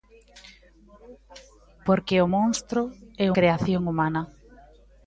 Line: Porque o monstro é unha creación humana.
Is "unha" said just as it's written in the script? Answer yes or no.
no